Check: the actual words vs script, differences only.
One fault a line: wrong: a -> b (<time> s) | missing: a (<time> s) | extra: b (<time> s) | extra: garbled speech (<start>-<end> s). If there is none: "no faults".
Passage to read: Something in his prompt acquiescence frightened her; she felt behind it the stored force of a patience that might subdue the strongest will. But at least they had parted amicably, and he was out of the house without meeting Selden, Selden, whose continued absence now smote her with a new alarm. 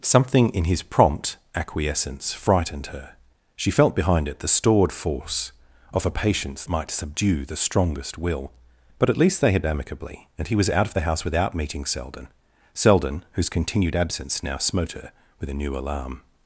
missing: that (6.7 s)
missing: parted (9.7 s)